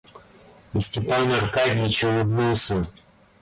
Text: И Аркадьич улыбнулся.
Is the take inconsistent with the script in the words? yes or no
yes